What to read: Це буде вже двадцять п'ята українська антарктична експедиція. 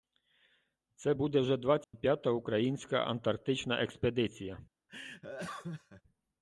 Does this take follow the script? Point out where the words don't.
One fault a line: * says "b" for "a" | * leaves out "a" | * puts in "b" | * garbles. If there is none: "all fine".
all fine